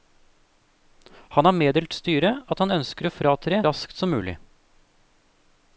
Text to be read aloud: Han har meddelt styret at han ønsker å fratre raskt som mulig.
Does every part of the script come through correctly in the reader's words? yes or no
yes